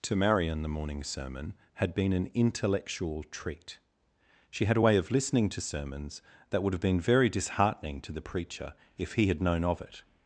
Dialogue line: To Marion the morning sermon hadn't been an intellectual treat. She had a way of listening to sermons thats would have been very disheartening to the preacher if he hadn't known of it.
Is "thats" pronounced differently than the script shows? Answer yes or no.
yes